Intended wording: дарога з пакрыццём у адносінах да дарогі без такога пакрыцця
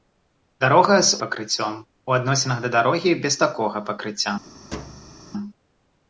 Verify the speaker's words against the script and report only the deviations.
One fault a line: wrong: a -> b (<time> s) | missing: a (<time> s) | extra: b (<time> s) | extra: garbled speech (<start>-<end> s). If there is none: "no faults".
no faults